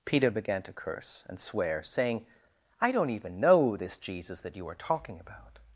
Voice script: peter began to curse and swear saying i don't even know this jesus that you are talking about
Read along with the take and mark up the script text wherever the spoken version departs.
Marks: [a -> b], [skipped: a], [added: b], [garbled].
peter began to curse and swear saying i don't even know this jesus that you are talking about